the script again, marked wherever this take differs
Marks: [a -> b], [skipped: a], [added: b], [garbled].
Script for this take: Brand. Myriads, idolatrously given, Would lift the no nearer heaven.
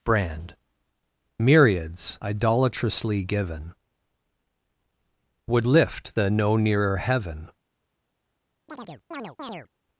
Brand. Myriads, idolatrously given, Would lift the no nearer heaven.